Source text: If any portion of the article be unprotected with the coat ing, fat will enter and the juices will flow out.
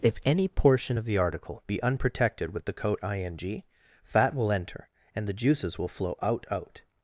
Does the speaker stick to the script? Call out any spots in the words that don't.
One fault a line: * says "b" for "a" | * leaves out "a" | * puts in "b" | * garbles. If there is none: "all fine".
* puts in "out"